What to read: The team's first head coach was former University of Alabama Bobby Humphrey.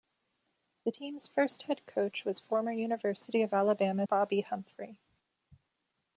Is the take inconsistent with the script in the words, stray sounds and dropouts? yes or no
no